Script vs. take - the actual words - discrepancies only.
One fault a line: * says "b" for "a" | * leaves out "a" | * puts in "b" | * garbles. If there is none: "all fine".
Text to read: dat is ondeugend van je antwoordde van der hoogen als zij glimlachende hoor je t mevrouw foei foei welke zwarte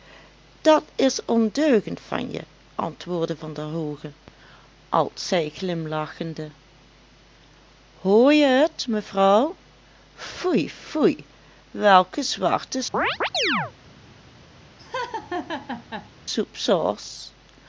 all fine